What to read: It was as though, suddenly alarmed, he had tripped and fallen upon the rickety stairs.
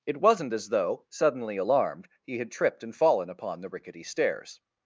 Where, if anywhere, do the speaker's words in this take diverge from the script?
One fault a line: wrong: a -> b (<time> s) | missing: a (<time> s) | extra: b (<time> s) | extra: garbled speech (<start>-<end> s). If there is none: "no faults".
wrong: was -> wasn't (0.2 s)